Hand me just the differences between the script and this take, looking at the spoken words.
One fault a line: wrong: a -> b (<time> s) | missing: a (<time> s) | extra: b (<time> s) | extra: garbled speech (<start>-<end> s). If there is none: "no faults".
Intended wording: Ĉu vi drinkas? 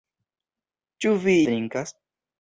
no faults